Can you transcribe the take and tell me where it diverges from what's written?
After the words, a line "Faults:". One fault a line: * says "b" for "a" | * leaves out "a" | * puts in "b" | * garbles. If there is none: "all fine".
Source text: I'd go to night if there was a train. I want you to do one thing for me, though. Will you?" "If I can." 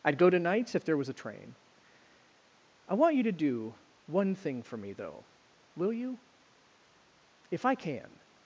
I'd go to nights if there was a train. I want you to do one thing for me, though. Will you?" "If I can."
Faults:
* says "nights" for "night"